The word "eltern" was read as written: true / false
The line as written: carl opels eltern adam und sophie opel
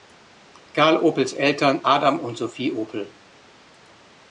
true